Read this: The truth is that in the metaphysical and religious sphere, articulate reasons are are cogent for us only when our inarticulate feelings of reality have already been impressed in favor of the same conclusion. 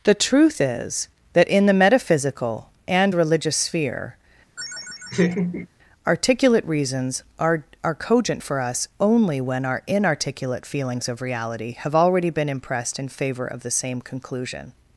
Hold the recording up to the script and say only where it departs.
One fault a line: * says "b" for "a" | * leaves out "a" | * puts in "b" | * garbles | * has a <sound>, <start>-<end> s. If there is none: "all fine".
* has a laugh, 4.6-5.7 s